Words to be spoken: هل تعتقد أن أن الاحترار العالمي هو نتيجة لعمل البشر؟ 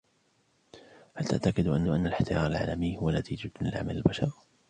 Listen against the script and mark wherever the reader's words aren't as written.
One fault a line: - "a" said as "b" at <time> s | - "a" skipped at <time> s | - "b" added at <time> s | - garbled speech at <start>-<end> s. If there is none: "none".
none